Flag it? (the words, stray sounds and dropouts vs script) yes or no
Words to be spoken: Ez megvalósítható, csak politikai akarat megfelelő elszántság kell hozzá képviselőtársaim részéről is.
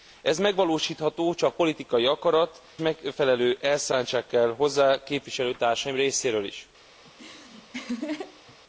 yes